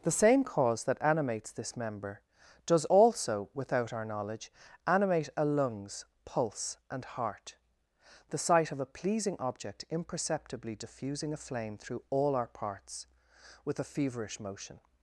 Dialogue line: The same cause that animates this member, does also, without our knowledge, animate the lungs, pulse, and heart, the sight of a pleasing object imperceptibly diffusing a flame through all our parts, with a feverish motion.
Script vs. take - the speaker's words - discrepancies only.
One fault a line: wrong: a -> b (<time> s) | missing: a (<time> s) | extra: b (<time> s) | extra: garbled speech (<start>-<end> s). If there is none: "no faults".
wrong: the -> a (5.4 s)